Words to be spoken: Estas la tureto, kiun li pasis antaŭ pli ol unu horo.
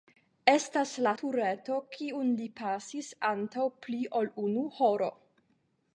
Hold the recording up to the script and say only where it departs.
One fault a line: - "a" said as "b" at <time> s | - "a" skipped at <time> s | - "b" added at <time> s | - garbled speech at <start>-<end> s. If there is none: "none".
none